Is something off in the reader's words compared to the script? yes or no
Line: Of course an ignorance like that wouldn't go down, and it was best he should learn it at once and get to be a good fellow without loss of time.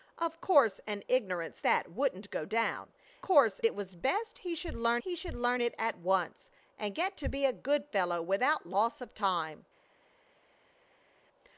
yes